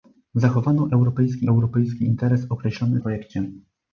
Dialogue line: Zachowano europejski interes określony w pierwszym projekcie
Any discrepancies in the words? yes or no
yes